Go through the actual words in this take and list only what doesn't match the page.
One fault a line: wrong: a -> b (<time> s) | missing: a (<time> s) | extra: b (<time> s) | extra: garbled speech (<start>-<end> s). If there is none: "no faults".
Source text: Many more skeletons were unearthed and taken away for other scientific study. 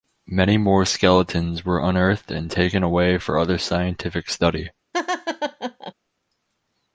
no faults